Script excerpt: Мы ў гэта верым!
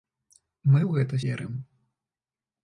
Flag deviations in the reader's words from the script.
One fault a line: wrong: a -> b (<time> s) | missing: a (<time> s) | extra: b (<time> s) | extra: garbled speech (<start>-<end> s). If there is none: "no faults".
no faults